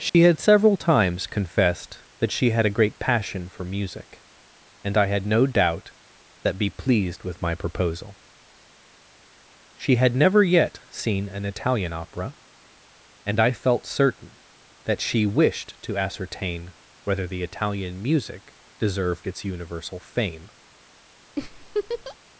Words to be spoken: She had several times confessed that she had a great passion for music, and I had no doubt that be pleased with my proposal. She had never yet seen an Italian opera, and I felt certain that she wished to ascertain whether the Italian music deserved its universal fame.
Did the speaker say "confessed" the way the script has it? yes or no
yes